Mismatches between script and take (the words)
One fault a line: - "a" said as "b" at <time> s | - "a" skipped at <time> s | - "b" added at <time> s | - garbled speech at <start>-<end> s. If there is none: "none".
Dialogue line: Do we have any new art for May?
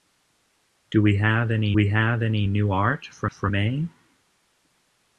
- "we have any" added at 1.7 s
- "for" added at 3.2 s